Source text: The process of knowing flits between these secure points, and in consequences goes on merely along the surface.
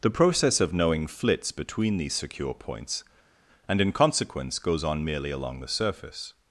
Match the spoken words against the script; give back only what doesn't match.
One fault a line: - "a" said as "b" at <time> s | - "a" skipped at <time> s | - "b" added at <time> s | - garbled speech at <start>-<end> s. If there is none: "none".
- "consequences" said as "consequence" at 3.9 s